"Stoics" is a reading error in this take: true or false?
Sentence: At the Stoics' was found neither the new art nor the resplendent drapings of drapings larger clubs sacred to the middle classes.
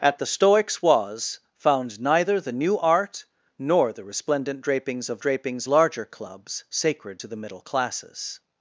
false